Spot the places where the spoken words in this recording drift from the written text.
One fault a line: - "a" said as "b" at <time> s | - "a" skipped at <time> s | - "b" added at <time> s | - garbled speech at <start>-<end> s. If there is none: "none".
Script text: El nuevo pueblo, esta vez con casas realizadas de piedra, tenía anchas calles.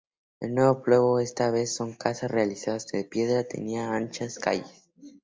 none